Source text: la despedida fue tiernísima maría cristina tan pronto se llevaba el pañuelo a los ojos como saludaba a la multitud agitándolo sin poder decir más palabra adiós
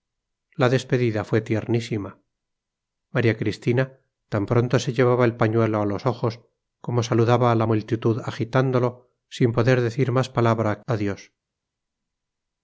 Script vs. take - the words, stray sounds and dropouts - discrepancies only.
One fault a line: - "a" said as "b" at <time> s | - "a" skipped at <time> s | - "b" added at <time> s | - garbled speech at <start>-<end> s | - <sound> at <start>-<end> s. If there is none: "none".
none